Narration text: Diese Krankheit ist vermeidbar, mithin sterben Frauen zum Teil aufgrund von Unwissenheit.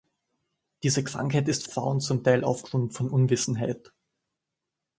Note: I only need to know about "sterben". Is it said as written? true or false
false